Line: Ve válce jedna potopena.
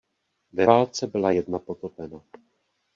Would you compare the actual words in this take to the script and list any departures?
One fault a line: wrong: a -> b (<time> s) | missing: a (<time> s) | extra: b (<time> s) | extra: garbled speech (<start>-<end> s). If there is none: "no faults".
extra: byla (1.1 s)